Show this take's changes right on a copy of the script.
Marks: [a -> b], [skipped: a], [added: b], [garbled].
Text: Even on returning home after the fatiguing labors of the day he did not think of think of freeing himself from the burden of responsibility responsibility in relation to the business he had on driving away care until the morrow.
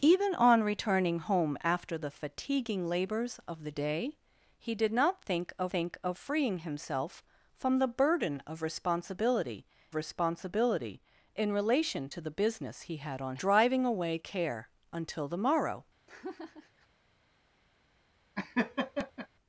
Even on returning home after the fatiguing labors of the day he did not think of think of freeing himself from the burden of responsibility responsibility in relation to the business he had on driving away care until the morrow.